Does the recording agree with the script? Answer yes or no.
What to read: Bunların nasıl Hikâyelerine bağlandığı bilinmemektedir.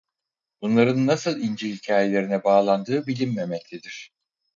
no